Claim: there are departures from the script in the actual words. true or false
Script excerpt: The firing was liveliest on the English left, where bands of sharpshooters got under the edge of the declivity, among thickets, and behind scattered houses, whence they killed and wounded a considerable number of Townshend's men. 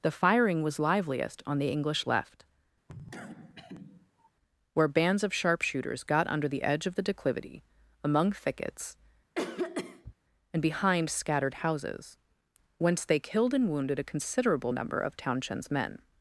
false